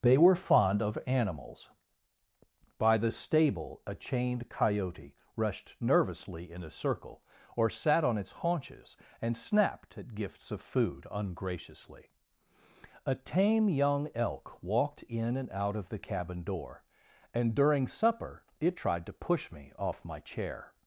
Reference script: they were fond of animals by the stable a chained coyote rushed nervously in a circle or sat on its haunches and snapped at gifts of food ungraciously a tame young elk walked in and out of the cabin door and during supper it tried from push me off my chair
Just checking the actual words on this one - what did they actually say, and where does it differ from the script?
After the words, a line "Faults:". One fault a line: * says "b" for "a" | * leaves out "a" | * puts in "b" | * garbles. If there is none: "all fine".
they were fond of animals by the stable a chained coyote rushed nervously in a circle or sat on its haunches and snapped at gifts of food ungraciously a tame young elk walked in and out of the cabin door and during supper it tried to push me off my chair
Faults:
* says "to" for "from"